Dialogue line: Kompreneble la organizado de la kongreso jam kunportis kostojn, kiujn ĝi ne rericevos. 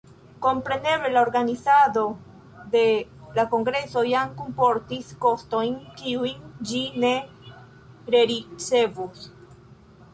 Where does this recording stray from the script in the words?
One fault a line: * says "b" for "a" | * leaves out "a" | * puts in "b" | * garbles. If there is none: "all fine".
all fine